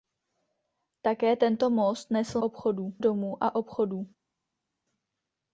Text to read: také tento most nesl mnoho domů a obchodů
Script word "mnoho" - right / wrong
wrong